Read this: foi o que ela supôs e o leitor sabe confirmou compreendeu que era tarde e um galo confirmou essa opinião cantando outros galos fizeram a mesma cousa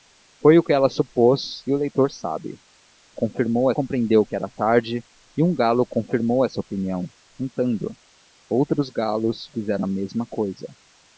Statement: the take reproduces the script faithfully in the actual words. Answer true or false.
true